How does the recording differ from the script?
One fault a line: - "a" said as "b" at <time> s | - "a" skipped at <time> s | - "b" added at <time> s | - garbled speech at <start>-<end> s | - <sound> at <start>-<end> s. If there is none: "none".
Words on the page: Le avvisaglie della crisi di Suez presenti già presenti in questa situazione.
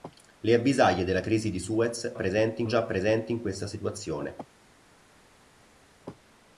none